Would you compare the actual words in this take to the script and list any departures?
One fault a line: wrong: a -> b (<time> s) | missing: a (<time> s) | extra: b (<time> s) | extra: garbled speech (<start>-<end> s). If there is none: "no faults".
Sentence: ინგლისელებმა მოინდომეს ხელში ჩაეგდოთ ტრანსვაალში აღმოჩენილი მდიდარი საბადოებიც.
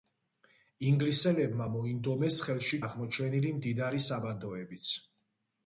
missing: ჩაეგდოთ ტრანსვაალში (2.8 s)